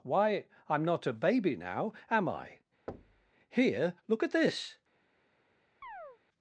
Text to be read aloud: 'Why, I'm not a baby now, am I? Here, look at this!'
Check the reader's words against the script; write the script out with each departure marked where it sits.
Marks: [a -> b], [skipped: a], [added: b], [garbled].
'Why, I'm not a baby now, am I? Here, look at this!'